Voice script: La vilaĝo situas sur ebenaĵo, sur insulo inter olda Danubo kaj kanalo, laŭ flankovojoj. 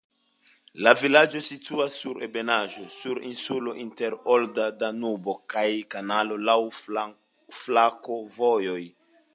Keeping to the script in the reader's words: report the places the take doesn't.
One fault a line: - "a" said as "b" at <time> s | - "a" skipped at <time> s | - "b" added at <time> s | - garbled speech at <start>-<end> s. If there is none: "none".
none